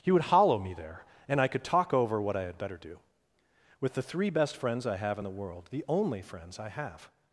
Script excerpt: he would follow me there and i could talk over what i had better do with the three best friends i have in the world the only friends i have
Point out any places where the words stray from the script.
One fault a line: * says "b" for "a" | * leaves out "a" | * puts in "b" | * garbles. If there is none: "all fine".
* says "hollow" for "follow"